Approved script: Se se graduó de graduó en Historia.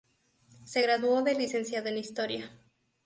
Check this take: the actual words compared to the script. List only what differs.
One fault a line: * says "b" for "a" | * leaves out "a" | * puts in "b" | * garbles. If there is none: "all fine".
* leaves out "se"
* says "licenciado" for "graduó"